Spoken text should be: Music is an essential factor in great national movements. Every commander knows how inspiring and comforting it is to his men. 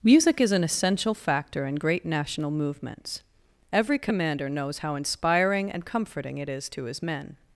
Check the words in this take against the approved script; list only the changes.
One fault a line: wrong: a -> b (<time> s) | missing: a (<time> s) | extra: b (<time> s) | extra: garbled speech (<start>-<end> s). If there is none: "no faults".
no faults